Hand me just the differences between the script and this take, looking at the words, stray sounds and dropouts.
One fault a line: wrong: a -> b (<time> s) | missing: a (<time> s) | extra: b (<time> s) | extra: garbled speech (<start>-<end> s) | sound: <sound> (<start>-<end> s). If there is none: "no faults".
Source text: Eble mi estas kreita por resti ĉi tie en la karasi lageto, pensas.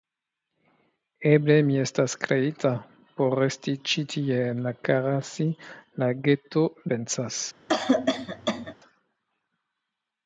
sound: cough (7.7-8.7 s)